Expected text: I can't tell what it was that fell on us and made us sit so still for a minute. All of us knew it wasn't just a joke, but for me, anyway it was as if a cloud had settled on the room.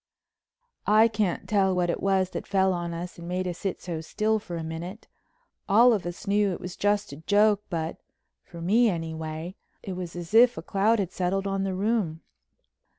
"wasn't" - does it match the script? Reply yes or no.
no